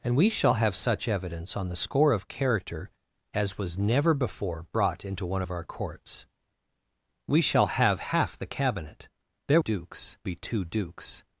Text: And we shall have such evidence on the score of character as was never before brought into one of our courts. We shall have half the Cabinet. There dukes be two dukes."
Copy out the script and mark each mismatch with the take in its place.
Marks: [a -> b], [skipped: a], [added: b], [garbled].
And we shall have such evidence on the score of character as was never before brought into one of our courts. We shall have half the Cabinet. There dukes be two dukes."